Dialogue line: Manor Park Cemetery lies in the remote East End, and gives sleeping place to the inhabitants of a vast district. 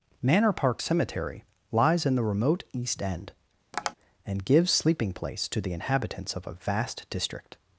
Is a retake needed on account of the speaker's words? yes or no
no